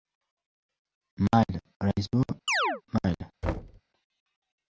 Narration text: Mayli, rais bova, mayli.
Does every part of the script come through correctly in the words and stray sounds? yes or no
no